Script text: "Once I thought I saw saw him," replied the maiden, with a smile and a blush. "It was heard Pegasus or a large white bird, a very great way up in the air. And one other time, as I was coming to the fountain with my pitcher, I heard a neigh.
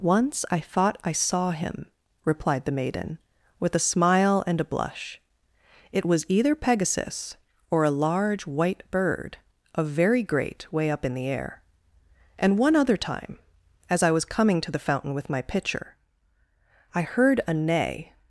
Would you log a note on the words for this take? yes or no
yes